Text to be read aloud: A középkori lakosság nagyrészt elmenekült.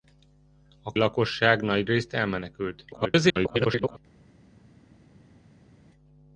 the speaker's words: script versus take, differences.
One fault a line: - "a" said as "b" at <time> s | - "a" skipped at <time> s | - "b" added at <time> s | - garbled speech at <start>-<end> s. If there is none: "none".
- "középkori" skipped at 0.9 s
- garbled speech at 2.9-4.0 s